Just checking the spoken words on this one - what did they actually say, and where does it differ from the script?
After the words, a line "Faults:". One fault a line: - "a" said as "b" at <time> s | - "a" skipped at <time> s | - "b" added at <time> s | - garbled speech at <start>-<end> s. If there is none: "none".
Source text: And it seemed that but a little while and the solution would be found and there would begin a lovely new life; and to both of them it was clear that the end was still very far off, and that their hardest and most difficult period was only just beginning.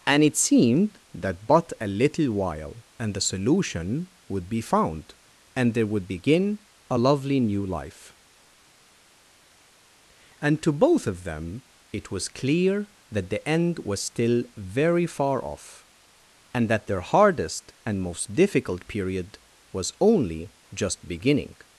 And it seemed that but a little while and the solution would be found and there would begin a lovely new life; and to both of them it was clear that the end was still very far off, and that their hardest and most difficult period was only just beginning.
Faults:
none